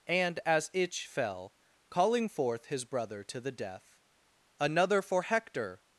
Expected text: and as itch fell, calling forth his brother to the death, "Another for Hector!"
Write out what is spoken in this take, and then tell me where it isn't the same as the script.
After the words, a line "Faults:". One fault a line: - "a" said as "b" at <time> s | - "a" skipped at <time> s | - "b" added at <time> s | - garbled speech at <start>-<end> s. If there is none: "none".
and as itch fell, calling forth his brother to the death, "Another for Hector!"
Faults:
none